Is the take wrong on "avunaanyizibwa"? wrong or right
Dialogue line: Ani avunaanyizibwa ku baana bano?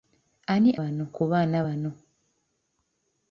wrong